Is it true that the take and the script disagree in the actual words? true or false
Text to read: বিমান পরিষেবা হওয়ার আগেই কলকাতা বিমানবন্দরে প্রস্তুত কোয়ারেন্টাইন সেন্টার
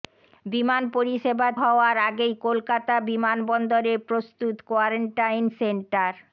false